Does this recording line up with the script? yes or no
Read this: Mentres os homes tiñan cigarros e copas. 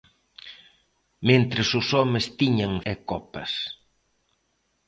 no